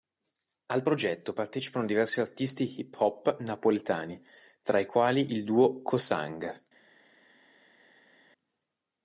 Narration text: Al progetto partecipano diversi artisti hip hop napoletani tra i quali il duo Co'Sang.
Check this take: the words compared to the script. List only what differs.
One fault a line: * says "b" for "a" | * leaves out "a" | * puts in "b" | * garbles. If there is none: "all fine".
all fine